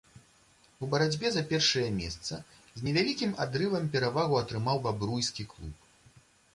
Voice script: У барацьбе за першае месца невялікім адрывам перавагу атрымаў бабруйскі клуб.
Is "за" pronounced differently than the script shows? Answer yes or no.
no